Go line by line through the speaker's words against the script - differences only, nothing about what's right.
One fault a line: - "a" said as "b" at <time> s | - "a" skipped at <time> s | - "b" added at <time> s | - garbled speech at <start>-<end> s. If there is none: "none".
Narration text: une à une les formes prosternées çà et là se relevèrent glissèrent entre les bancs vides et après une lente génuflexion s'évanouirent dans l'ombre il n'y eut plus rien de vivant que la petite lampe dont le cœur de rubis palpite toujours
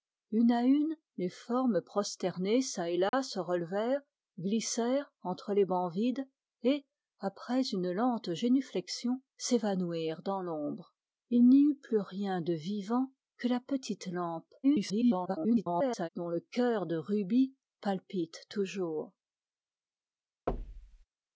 - garbled speech at 14.6-16.1 s